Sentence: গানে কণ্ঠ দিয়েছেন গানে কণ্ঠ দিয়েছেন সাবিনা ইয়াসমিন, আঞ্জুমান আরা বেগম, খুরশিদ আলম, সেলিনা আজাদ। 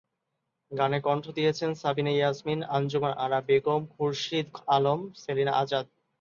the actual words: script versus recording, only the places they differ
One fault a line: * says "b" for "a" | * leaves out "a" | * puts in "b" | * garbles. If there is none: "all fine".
* leaves out "গানে কণ্ঠ দিয়েছেন"